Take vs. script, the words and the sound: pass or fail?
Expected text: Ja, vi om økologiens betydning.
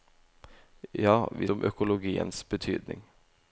pass